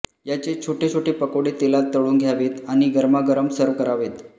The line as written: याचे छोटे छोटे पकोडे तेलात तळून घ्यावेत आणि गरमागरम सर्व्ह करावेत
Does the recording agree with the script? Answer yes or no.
yes